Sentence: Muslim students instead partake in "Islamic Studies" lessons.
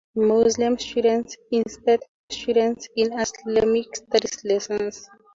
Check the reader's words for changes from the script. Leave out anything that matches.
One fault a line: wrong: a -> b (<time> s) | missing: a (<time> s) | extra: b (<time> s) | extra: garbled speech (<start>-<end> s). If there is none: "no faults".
wrong: partake -> students (2.3 s)